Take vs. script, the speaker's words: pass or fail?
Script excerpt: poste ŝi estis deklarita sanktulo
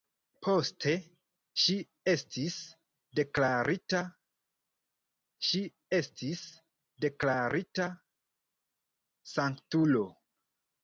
fail